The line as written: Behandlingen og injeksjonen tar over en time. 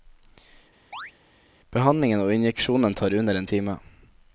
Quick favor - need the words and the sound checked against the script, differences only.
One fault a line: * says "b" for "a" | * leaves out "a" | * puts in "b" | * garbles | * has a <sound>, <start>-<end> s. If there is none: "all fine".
* has a chirp, 0.9-1.1 s
* says "under" for "over"